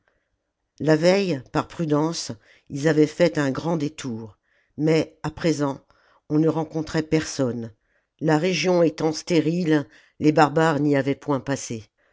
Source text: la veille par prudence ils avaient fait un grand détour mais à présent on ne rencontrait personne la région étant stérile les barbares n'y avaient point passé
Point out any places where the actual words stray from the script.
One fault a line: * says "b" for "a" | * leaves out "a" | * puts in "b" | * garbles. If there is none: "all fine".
all fine